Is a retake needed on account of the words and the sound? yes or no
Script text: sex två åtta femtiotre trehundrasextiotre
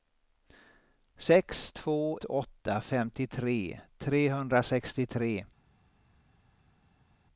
no